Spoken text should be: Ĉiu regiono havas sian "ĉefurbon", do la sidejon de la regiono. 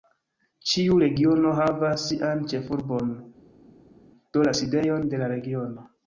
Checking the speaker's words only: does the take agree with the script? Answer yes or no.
yes